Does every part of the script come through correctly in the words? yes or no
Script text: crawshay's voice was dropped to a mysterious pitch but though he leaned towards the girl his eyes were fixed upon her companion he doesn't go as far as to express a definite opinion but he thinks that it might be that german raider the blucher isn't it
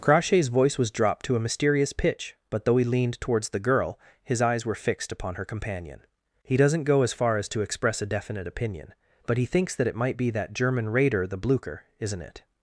yes